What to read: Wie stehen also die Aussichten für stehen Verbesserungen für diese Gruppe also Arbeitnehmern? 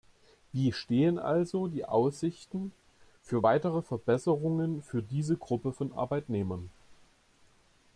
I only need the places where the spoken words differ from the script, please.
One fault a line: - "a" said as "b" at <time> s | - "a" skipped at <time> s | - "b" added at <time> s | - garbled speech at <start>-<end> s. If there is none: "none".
- "stehen" said as "weitere" at 3.4 s
- "also" said as "von" at 5.7 s